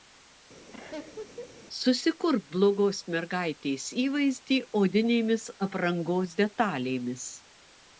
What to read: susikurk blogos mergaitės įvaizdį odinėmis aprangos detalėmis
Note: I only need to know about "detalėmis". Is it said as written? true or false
true